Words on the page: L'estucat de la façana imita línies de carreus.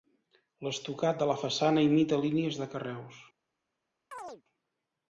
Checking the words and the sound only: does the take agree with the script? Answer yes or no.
no